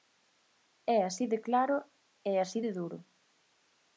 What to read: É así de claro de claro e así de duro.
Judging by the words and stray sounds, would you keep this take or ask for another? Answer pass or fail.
fail